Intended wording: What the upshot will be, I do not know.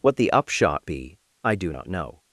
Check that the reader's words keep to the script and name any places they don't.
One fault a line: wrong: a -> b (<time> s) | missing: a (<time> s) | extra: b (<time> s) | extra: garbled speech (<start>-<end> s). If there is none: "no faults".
missing: will (0.8 s)